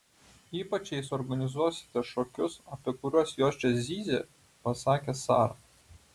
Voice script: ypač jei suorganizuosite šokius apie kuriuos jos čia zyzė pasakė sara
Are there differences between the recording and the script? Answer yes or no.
no